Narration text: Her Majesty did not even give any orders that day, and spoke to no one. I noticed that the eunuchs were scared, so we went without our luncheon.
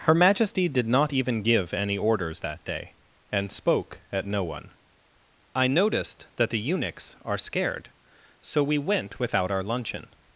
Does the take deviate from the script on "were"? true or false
true